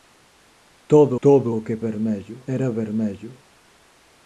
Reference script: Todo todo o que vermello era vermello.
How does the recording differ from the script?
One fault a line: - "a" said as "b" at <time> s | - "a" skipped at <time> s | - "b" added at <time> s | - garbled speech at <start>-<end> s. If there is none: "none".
none